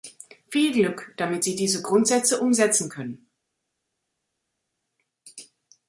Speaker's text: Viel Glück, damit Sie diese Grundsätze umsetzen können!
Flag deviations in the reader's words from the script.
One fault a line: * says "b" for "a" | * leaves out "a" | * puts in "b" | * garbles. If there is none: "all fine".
all fine